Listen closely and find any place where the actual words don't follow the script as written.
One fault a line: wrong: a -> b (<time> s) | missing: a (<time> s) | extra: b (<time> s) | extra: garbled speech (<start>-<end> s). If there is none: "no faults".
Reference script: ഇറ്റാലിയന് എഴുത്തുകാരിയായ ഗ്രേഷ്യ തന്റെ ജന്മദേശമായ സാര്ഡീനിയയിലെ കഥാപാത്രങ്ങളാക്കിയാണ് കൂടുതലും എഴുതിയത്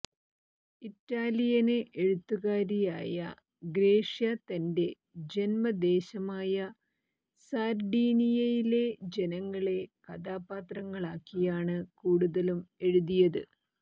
extra: ജനങ്ങളെ (9.2 s)